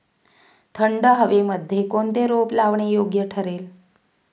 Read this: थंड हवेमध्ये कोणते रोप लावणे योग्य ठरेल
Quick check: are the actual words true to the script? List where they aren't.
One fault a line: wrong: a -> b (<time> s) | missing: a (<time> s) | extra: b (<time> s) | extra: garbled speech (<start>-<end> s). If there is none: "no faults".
no faults